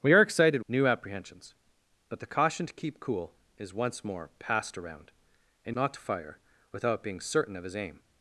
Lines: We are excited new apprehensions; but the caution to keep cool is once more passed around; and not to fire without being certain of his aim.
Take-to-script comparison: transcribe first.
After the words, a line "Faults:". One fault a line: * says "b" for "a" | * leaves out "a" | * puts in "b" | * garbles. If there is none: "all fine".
We are excited new apprehensions; but the caution to keep cool is once more passed around; and not to fire without being certain of his aim.
Faults:
all fine